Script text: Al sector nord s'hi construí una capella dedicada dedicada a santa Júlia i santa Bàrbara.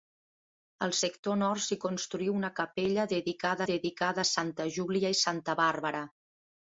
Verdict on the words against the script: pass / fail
pass